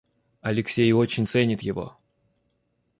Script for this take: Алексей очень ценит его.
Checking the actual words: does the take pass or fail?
pass